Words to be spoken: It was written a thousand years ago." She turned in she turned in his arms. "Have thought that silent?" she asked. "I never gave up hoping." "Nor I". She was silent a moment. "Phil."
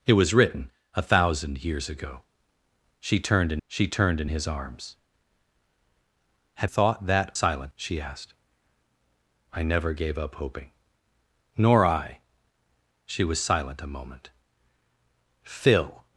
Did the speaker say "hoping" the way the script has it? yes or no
yes